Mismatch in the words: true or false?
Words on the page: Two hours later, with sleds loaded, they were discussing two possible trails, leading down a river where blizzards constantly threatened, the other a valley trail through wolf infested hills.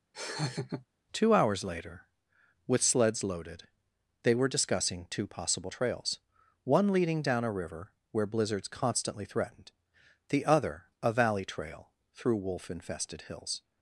true